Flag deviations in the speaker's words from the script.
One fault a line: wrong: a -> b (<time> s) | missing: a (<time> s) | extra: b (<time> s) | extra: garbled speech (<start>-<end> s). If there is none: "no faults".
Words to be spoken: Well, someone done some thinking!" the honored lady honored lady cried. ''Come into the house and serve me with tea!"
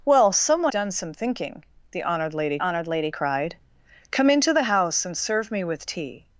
no faults